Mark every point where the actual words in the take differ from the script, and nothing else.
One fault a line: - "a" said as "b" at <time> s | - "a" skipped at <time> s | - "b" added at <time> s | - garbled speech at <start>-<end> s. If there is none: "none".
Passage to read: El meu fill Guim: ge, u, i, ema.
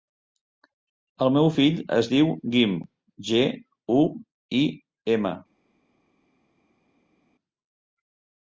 - "es diu" added at 2.0 s